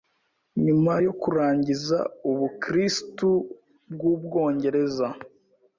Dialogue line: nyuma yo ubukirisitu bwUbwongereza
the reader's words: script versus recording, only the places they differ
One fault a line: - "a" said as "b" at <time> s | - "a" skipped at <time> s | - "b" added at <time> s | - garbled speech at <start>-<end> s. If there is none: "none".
- "kurangiza" added at 1.2 s